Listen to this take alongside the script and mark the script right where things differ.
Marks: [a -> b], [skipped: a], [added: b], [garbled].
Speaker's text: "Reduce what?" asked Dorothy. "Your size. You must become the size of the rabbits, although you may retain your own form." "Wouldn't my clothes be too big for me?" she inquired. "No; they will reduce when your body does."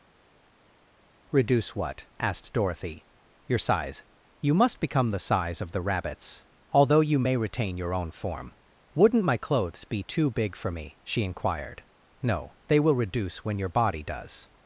"Reduce what?" asked Dorothy. "Your size. You must become the size of the rabbits, although you may retain your own form." "Wouldn't my clothes be too big for me?" she inquired. "No; they will reduce when your body does."